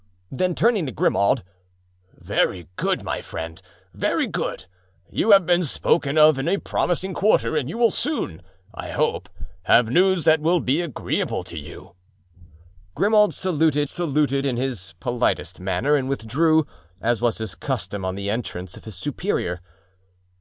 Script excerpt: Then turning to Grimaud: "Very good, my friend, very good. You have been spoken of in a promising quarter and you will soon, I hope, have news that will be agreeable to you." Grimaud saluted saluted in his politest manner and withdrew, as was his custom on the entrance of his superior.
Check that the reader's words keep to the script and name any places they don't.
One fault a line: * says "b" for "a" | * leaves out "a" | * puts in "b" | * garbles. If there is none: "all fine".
all fine